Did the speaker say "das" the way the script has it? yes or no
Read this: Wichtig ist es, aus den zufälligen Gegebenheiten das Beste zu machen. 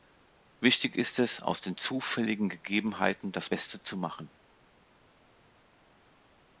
yes